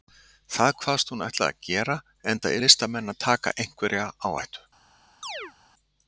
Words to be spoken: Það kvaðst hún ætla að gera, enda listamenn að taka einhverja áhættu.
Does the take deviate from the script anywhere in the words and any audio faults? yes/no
yes